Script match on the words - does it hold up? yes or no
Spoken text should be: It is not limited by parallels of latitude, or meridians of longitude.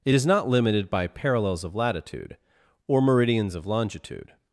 yes